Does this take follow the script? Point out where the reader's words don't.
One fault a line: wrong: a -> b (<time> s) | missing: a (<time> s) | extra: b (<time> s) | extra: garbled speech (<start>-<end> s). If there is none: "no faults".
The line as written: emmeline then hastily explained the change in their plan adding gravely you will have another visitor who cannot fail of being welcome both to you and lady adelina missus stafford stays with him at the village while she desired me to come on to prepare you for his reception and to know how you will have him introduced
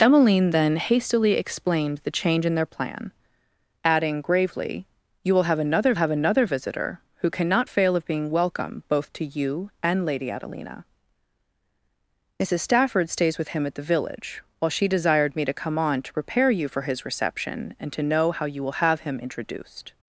extra: have another (6.0 s)